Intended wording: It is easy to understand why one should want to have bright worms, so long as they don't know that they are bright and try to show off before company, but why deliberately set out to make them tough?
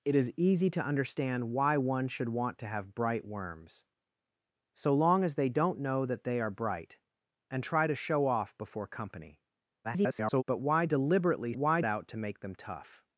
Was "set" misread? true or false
true